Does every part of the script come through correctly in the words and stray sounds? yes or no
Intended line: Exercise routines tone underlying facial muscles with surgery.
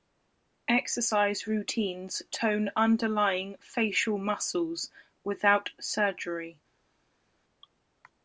no